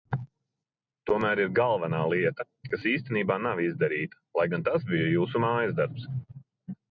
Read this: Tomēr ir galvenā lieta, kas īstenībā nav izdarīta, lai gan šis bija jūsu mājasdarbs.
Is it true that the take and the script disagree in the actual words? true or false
true